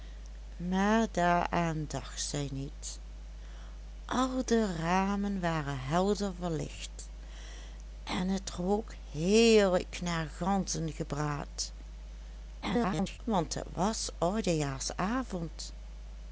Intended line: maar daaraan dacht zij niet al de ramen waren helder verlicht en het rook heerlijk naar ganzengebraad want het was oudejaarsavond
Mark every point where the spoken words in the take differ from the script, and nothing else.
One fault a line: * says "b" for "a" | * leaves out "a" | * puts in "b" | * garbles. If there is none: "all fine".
* garbles